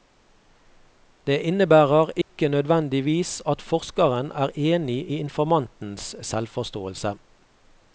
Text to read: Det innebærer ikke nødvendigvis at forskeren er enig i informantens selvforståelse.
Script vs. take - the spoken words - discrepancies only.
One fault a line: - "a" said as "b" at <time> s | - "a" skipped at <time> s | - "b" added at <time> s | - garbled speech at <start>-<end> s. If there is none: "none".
none